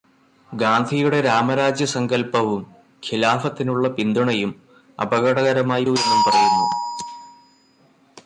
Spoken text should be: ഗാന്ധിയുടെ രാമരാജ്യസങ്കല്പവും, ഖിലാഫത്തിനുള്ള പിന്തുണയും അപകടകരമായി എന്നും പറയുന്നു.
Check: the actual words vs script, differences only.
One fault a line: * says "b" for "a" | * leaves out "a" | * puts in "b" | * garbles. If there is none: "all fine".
all fine